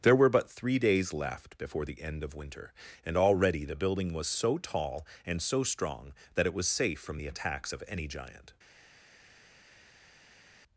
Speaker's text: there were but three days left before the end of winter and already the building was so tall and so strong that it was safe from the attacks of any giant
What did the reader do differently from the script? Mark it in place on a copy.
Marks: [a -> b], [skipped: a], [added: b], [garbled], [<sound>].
there were but three days left before the end of winter and already the building was so tall and so strong that it was safe from the attacks of any giant